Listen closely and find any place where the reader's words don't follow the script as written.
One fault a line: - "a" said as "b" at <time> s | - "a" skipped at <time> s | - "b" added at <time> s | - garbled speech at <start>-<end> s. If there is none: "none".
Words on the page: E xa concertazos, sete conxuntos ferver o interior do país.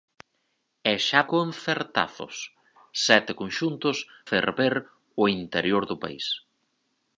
none